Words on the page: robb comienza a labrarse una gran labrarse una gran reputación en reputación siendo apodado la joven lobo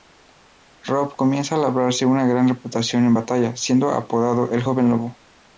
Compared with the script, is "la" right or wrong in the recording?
wrong